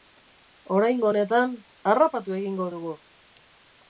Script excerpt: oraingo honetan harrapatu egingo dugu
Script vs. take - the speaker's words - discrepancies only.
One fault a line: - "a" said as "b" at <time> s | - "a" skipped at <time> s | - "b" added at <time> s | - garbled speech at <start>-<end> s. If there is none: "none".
none